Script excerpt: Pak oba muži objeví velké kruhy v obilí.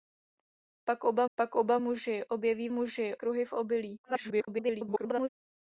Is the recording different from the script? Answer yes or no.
yes